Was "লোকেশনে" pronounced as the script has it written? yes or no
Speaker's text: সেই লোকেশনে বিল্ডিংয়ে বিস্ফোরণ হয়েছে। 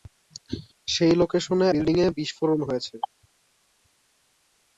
yes